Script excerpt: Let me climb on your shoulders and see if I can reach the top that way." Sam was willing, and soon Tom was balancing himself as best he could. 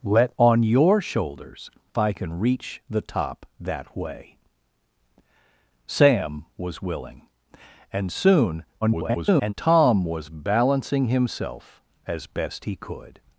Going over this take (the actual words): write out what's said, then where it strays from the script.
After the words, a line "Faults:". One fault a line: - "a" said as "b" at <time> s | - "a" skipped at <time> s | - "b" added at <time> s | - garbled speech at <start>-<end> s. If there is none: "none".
Let on your shoulders I can reach the top that way." Sam was willing, and soon [garbled] Tom was balancing himself as best he could.
Faults:
- "me climb" skipped at 0.4 s
- "and see if" skipped at 1.7 s
- garbled speech at 8.8-9.5 s